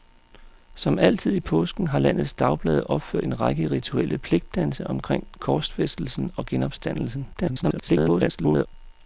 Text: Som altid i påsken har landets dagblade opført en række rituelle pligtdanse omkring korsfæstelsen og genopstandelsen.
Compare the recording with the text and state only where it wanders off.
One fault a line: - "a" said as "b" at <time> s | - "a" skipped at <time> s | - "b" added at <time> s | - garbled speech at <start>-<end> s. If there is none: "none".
- garbled speech at 7.3-8.7 s